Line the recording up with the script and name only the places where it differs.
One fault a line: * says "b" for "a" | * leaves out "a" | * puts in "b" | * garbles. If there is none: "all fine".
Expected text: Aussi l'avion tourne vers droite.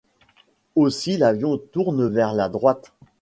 * puts in "la"